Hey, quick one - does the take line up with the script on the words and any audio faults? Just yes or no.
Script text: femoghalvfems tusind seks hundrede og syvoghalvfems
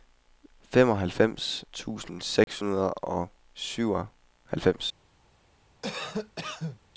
no